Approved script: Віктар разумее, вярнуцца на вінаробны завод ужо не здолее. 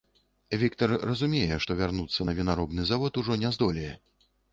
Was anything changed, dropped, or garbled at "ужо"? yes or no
no